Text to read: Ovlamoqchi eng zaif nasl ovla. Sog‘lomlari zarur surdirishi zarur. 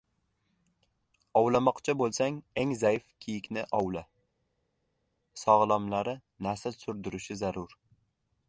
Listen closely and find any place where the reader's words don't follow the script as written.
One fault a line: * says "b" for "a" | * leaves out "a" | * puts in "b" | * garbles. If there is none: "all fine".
* puts in "bo‘lsang"
* says "kiyikni" for "nasl"
* says "nasl" for "zarur"